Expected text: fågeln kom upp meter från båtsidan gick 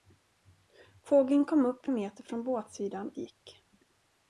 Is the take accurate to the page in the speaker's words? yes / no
yes